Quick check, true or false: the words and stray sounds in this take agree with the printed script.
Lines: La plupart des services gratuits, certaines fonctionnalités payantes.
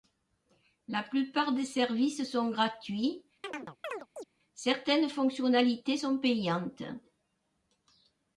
false